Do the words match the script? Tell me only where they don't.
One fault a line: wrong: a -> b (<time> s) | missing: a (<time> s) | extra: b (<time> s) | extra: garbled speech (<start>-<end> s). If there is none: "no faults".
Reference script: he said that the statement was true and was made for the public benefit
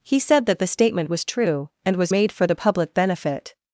no faults